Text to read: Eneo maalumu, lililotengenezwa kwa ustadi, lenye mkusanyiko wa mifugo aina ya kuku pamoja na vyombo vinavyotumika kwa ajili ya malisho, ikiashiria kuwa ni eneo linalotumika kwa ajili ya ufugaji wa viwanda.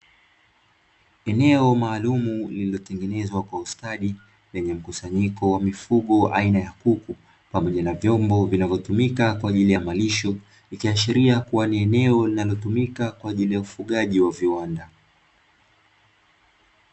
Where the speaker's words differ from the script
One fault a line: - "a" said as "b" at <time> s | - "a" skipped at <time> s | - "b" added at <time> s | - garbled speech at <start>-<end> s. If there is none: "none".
none